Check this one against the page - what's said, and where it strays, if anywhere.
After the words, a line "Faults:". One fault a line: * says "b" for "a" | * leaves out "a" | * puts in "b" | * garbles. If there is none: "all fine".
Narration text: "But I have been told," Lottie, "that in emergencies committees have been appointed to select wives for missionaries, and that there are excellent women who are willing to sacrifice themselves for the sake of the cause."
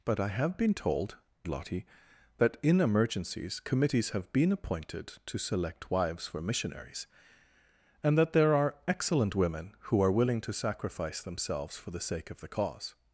"But I have been told," Lottie, "that in emergencies committees have been appointed to select wives for missionaries, and that there are excellent women who are willing to sacrifice themselves for the sake of the cause."
Faults:
all fine